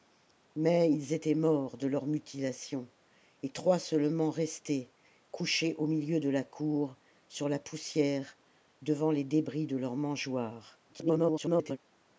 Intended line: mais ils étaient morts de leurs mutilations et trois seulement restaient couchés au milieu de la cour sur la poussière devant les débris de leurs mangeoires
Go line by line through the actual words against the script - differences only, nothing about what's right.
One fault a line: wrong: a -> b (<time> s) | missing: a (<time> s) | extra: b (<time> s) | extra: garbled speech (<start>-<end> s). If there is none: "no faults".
extra: garbled speech (10.9-11.8 s)